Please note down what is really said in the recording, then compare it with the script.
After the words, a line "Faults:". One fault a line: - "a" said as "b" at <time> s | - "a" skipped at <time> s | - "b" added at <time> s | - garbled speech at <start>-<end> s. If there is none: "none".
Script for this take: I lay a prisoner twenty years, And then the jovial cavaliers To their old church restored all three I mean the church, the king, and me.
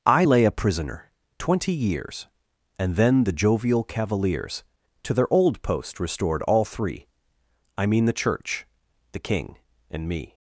I lay a prisoner twenty years, And then the jovial cavaliers To their old post restored all three I mean the church, the king, and me.
Faults:
- "church" said as "post" at 5.6 s